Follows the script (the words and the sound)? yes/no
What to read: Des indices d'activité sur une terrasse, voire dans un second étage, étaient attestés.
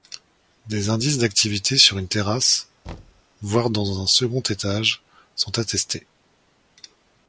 no